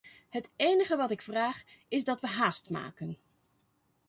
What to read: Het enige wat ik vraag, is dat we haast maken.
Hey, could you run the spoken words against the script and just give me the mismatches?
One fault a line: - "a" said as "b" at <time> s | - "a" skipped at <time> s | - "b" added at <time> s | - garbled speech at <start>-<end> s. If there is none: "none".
none